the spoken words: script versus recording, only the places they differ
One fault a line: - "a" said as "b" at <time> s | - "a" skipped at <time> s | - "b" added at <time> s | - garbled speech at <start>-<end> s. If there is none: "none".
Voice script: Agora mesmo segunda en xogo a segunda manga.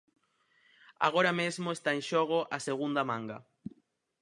- "segunda" said as "está" at 1.7 s